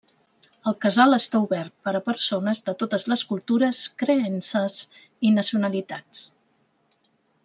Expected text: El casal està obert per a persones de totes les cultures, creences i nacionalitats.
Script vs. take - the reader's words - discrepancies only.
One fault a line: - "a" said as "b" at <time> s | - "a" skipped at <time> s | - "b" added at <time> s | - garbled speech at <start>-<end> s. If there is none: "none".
none